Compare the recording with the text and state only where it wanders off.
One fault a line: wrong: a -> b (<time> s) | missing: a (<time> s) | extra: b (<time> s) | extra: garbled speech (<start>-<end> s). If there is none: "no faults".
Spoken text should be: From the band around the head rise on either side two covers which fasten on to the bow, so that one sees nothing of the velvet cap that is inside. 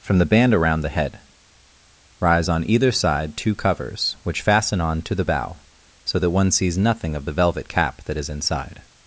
no faults